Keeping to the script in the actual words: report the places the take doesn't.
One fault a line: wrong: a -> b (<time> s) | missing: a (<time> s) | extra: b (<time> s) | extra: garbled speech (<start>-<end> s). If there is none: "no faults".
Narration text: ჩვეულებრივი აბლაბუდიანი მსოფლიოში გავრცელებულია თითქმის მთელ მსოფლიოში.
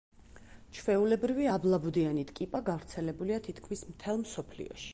wrong: მსოფლიოში -> ტკიპა (2.3 s)